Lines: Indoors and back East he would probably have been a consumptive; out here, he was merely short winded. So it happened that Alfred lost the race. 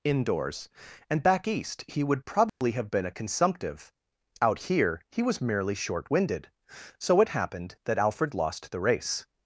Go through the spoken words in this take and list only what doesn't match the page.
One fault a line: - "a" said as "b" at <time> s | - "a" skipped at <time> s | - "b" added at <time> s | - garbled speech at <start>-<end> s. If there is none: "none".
none